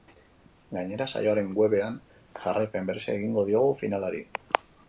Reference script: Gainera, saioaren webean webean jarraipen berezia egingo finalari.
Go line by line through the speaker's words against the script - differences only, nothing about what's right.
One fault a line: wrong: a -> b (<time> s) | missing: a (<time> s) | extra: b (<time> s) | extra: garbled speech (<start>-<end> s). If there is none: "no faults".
missing: webean (2.0 s)
extra: diogu (3.5 s)